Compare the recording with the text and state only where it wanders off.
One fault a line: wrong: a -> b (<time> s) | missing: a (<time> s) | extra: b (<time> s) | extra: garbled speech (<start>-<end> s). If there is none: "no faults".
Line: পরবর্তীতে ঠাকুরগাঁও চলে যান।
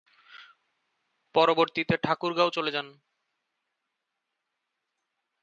no faults